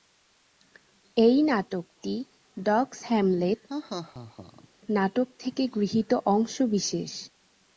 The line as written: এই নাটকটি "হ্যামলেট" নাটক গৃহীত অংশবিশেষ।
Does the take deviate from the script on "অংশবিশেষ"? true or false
false